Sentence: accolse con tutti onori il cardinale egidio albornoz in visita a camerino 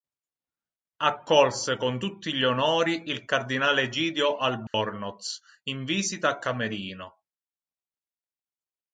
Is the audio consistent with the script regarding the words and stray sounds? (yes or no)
no